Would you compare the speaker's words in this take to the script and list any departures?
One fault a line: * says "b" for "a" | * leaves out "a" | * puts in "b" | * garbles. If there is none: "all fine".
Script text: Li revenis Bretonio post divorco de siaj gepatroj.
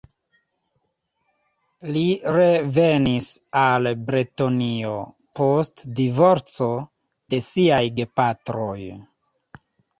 * puts in "al"